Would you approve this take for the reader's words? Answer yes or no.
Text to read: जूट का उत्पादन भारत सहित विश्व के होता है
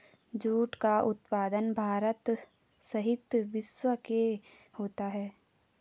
yes